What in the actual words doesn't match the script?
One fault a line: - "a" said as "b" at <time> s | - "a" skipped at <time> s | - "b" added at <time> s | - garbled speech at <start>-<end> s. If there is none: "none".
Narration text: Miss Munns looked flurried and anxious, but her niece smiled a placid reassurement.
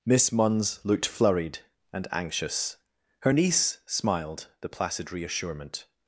- "but" skipped at 2.8 s
- "a" said as "the" at 4.6 s